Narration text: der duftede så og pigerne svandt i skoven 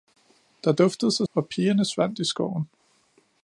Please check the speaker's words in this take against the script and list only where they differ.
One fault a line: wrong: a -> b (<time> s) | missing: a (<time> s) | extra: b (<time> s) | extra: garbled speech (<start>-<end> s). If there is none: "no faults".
no faults